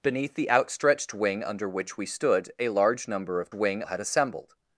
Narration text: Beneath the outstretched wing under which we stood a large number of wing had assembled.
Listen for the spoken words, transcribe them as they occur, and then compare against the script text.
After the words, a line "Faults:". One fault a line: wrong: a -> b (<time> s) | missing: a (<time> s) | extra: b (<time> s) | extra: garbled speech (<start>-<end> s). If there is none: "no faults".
Beneath the outstretched wing under which we stood a large number of wing had assembled.
Faults:
no faults